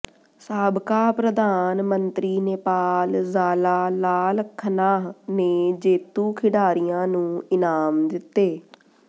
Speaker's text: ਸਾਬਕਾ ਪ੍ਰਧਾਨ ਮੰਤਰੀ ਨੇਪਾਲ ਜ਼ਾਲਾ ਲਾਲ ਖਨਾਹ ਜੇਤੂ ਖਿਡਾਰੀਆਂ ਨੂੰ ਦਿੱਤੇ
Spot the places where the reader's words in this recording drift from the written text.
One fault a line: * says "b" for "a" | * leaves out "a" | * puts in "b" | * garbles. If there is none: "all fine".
* puts in "ਨੇ"
* puts in "ਇਨਾਮ"